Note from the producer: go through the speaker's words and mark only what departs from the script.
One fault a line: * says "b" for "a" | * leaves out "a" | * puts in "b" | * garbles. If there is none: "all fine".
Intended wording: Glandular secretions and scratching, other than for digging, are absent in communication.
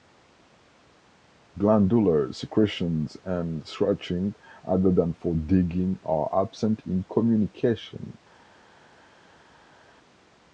all fine